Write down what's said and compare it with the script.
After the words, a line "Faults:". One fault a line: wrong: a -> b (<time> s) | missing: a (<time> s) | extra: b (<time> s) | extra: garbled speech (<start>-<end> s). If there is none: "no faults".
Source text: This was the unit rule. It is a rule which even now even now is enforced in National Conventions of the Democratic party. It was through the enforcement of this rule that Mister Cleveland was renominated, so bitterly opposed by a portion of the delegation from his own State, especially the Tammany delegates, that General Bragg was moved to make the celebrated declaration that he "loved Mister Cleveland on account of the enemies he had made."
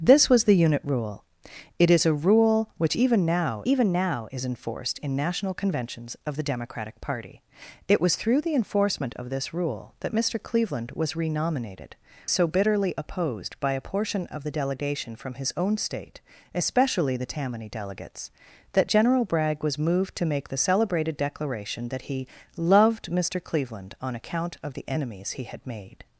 This was the unit rule. It is a rule which even now even now is enforced in National Conventions of the Democratic party. It was through the enforcement of this rule that Mister Cleveland was renominated, so bitterly opposed by a portion of the delegation from his own State, especially the Tammany delegates, that General Bragg was moved to make the celebrated declaration that he "loved Mister Cleveland on account of the enemies he had made."
Faults:
no faults